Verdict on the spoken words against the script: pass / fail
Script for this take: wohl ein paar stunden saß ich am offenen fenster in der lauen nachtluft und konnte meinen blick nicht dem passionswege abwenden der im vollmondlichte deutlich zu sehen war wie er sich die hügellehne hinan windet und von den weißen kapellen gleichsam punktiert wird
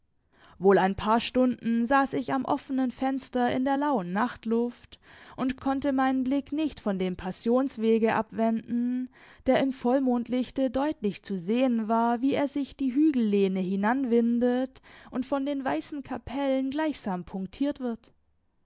fail